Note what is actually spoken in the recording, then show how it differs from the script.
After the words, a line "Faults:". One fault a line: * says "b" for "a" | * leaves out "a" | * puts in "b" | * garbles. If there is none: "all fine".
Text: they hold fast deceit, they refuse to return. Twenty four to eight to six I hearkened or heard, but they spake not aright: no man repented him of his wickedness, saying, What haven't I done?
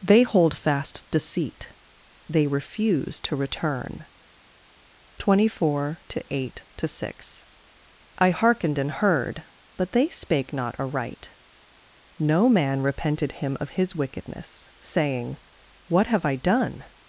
they hold fast deceit, they refuse to return. Twenty four to eight to six I hearkened and heard, but they spake not aright: no man repented him of his wickedness, saying, What have I done?
Faults:
* says "and" for "or"
* says "have" for "haven't"